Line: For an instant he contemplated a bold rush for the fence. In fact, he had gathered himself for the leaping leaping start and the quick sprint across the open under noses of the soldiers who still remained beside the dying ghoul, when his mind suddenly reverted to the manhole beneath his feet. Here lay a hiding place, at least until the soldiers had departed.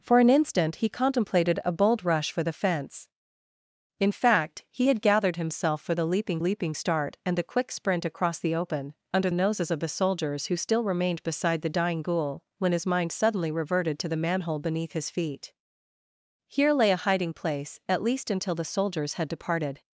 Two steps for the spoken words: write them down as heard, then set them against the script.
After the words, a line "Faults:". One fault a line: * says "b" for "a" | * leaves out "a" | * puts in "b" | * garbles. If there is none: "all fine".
For an instant he contemplated a bold rush for the fence. In fact, he had gathered himself for the leaping leaping start and the quick sprint across the open under noses of the soldiers who still remained beside the dying ghoul, when his mind suddenly reverted to the manhole beneath his feet. Here lay a hiding place, at least until the soldiers had departed.
Faults:
all fine